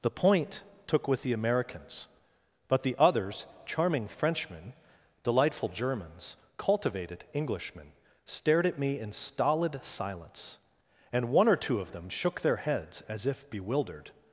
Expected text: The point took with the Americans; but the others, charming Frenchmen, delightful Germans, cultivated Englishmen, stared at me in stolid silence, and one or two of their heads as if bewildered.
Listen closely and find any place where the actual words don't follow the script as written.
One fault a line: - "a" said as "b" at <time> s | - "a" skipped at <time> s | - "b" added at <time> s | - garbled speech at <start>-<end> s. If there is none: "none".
- "them shook" added at 11.9 s